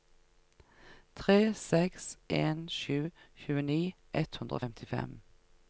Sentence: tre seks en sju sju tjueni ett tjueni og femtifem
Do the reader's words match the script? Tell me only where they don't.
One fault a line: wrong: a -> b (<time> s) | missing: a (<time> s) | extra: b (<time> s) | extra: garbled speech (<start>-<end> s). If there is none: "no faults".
missing: sju (3.0 s)
wrong: tjueni -> hundre (4.4 s)